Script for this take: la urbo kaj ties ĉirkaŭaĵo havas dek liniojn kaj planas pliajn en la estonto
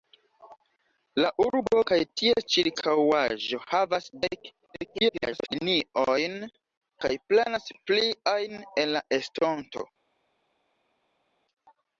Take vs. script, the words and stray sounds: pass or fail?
fail